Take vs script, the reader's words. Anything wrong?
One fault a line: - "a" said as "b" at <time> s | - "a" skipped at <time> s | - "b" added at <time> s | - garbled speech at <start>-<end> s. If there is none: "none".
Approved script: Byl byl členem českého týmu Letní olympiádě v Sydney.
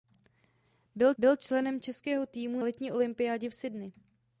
none